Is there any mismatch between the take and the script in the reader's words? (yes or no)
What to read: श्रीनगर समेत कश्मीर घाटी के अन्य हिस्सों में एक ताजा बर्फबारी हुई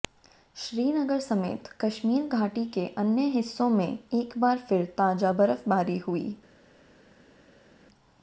yes